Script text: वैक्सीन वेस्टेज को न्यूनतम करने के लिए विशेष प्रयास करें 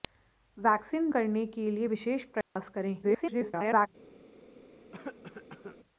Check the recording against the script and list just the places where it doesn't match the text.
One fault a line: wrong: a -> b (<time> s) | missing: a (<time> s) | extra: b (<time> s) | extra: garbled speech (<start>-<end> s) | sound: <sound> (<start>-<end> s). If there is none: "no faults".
missing: वेस्टेज को न्यूनतम (1.1 s)
sound: dropout (2.4-2.6 s)
extra: garbled speech (3.0-3.9 s)
sound: cough (4.9-5.8 s)